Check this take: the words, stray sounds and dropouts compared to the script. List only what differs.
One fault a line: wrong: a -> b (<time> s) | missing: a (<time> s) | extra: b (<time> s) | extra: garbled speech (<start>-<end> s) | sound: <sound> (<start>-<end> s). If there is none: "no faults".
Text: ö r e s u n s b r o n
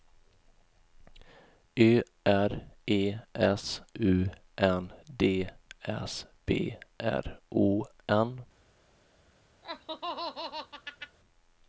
extra: d (5.2 s)
sound: laugh (9.6-11.2 s)